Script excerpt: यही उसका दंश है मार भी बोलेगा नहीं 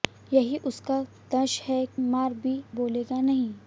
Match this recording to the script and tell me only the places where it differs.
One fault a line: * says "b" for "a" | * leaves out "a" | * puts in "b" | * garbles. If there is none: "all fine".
all fine